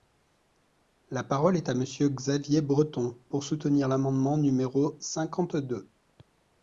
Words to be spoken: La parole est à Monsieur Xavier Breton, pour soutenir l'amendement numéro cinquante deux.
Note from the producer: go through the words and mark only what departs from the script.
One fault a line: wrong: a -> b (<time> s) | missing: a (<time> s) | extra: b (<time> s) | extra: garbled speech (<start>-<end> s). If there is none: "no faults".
no faults